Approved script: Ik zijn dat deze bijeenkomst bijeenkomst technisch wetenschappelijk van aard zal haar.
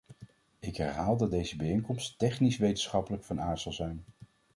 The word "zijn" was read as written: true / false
false